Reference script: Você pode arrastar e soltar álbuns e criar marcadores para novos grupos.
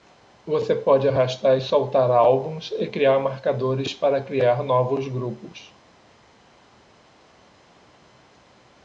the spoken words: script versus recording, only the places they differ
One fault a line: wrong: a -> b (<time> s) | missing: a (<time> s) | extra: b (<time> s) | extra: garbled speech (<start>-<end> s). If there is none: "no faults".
extra: criar (4.2 s)